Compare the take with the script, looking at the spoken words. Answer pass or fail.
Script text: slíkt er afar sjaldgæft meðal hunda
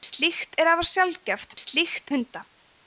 fail